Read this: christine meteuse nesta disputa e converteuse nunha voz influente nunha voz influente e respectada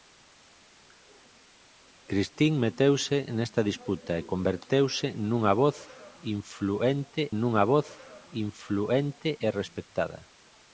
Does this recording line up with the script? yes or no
yes